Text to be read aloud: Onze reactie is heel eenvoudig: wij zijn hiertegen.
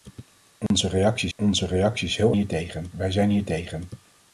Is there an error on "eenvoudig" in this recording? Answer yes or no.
yes